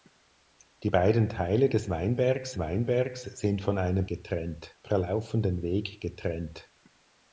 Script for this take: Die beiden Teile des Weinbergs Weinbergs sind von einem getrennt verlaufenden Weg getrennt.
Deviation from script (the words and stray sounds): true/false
false